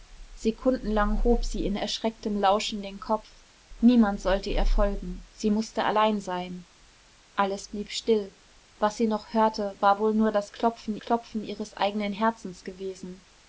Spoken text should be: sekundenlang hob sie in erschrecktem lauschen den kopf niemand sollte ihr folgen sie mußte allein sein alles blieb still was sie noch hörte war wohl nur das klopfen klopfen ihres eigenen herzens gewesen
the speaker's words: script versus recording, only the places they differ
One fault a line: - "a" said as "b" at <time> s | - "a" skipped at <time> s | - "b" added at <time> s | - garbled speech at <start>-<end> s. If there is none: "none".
none